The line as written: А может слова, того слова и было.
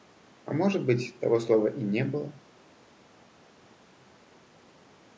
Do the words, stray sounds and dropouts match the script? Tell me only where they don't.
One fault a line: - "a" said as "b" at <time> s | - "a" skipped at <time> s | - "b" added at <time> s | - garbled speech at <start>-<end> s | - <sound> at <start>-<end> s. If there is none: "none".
- "слова" said as "быть" at 0.8 s
- "не" added at 1.8 s